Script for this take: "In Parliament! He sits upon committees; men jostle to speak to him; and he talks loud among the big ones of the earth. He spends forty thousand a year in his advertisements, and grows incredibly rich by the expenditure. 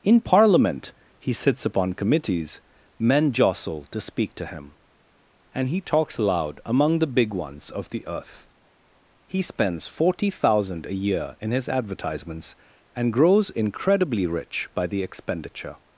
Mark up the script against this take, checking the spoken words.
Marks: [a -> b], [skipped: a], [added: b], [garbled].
"In Parliament! He sits upon committees; men jostle to speak to him; and he talks loud among the big ones of the earth. He spends forty thousand a year in his advertisements, and grows incredibly rich by the expenditure.